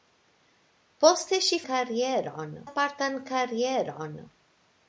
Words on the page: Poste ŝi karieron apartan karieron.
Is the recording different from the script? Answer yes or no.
no